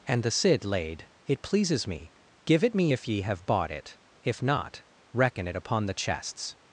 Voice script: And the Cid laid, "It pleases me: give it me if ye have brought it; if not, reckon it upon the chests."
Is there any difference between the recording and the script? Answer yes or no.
yes